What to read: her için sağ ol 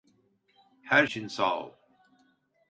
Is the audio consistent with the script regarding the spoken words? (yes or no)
yes